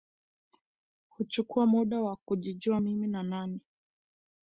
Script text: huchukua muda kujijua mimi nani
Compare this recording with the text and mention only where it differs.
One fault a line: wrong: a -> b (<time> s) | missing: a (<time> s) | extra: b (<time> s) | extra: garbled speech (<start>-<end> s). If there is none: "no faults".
extra: wa (2.0 s)
extra: ni (3.1 s)